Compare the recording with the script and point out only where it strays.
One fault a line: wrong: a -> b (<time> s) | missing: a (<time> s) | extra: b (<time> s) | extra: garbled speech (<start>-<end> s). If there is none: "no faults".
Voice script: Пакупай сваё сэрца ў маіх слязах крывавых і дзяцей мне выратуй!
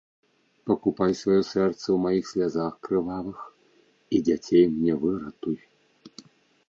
no faults